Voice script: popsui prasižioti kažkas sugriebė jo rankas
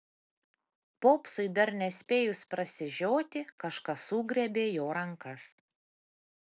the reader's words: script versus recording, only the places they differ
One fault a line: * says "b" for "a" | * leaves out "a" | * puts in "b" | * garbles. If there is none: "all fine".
* puts in "dar nespėjus"